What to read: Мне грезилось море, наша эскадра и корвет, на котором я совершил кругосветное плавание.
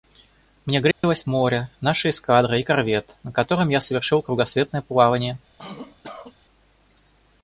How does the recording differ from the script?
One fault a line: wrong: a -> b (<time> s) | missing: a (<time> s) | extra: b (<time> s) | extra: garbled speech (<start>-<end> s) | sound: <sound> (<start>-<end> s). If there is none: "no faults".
sound: dropout (0.9-1.0 s)
sound: cough (5.6-6.4 s)